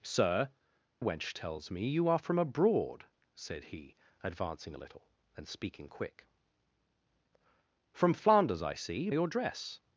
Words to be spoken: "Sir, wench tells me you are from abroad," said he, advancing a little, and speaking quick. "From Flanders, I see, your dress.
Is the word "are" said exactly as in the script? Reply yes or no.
yes